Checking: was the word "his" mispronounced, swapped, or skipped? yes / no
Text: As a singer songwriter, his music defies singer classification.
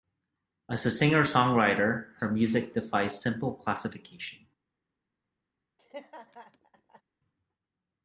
yes